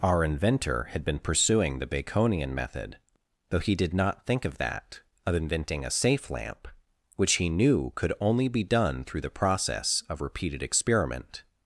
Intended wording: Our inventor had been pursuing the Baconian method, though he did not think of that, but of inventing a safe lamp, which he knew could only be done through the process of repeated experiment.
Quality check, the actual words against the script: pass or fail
fail